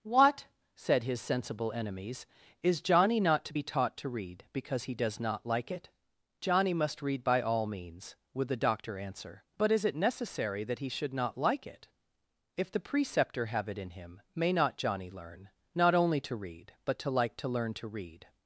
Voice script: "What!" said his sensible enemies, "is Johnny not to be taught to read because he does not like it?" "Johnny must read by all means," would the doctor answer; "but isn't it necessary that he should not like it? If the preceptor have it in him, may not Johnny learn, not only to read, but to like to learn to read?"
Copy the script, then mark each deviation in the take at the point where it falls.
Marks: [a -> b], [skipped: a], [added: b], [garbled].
"What!" said his sensible enemies, "is Johnny not to be taught to read because he does not like it?" "Johnny must read by all means," would the doctor answer; "but [isn't -> is] it necessary that he should not like it? If the preceptor have it in him, may not Johnny learn, not only to read, but to like to learn to read?"